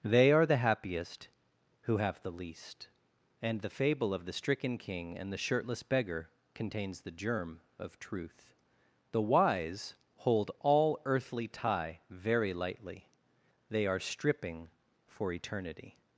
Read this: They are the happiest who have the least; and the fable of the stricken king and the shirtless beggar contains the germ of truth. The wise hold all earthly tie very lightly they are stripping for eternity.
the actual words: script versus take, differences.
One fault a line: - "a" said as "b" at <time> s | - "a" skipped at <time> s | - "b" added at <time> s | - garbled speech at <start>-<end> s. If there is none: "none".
none